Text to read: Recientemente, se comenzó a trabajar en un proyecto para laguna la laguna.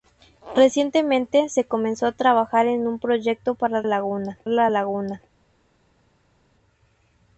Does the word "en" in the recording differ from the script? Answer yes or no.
no